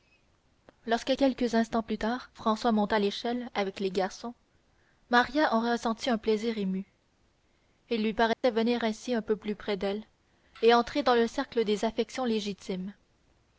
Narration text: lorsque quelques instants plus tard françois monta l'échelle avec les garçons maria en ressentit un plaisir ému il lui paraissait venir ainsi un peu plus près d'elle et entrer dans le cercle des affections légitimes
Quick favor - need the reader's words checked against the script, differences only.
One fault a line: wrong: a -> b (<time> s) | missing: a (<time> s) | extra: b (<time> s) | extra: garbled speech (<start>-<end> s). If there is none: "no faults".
no faults